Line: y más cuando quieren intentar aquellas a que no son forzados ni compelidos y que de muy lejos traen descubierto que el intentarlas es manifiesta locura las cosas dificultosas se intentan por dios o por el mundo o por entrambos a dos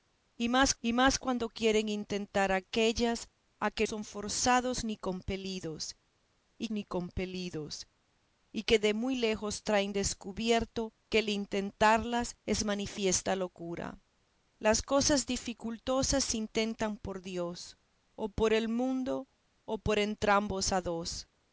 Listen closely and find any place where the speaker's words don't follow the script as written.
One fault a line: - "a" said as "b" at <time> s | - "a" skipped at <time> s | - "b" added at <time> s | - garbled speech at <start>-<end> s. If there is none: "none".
- "y más" added at 0.8 s
- "no" skipped at 3.9 s
- "ni compelidos y" added at 6.7 s